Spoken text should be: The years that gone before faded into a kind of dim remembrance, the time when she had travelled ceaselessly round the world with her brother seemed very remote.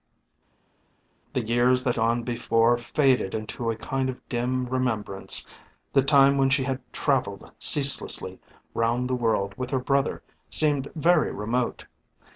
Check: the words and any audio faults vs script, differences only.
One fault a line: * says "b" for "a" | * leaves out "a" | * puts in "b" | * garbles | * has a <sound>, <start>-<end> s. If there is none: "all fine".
all fine